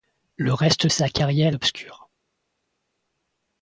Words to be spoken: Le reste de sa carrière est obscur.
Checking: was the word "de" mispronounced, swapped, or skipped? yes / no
yes